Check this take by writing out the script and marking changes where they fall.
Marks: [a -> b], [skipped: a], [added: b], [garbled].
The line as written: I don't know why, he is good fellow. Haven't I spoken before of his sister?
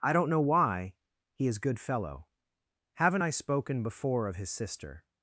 I don't know why, he is good fellow. Haven't I spoken before of his sister?